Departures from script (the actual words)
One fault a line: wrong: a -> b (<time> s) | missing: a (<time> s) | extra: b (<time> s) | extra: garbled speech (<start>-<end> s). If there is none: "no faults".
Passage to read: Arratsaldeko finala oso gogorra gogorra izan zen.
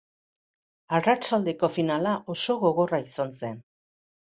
missing: gogorra (3.0 s)